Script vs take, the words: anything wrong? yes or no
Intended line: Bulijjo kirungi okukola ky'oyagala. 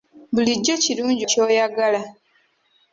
yes